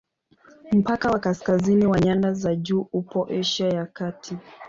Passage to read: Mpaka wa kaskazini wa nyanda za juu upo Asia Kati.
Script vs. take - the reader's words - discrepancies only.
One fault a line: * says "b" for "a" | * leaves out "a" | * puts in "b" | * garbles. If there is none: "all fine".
* puts in "ya"